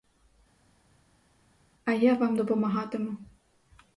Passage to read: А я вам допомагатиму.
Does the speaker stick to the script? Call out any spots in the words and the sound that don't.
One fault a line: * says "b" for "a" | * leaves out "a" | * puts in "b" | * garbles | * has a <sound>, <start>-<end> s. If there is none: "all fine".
all fine